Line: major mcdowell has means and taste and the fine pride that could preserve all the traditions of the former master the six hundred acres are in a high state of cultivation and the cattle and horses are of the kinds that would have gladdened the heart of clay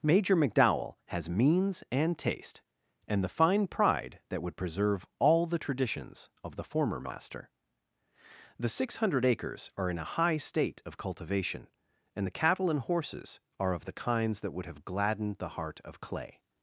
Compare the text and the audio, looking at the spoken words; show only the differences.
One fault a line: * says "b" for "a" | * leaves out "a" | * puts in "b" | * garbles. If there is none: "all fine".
* says "would" for "could"